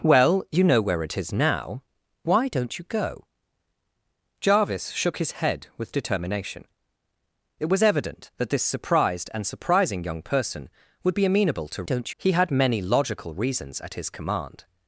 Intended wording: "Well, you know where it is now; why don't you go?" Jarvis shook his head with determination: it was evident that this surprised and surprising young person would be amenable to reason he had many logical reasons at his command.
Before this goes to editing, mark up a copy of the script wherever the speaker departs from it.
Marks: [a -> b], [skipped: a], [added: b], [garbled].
"Well, you know where it is now; why don't you go?" Jarvis shook his head with determination: it was evident that this surprised and surprising young person would be amenable to [reason -> don't] he had many logical reasons at his command.